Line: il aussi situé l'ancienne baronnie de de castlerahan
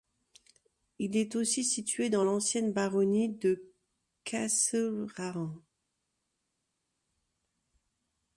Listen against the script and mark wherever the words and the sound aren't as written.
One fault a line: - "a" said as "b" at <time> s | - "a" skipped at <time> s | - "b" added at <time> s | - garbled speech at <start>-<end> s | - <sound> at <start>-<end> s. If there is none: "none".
- "est" added at 1.1 s
- "dans" added at 2.1 s
- "de" skipped at 3.7 s